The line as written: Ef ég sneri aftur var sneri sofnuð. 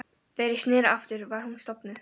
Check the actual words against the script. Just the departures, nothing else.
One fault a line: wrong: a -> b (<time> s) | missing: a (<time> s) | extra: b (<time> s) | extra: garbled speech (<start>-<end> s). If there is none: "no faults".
wrong: Ef -> Þegar (0.4 s)
wrong: sneri -> hún (1.5 s)